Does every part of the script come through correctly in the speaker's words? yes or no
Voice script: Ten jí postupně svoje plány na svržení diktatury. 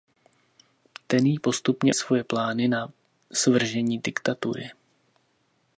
yes